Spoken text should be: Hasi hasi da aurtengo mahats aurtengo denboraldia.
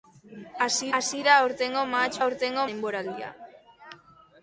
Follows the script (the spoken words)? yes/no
yes